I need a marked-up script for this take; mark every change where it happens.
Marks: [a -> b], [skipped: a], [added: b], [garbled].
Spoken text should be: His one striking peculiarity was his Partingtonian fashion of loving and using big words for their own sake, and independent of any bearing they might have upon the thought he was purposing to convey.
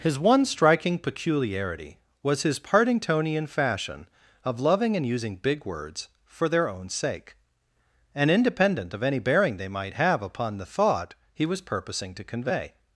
His one striking peculiarity was his Partingtonian fashion of loving and using big words for their own sake, and independent of any bearing they might have upon the thought he was purposing to convey.